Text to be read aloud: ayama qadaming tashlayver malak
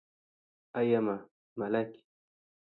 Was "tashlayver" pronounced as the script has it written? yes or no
no